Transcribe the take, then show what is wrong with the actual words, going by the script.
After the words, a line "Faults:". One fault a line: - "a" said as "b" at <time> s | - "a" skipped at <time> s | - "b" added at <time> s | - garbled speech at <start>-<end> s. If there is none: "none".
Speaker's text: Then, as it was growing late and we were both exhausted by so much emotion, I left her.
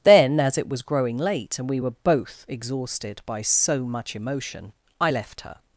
Then, as it was growing late and we were both exhausted by so much emotion, I left her.
Faults:
none